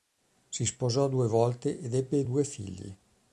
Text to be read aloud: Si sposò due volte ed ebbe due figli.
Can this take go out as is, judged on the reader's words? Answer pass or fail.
pass